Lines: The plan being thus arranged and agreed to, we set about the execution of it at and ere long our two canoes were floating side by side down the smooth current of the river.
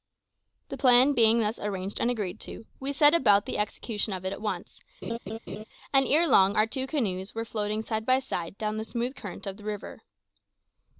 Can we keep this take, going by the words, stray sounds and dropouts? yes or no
no